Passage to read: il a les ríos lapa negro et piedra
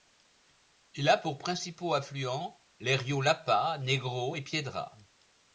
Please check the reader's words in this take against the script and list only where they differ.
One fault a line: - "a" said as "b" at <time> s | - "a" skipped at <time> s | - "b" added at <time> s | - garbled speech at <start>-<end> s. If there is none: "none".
- "pour principaux affluents" added at 1.2 s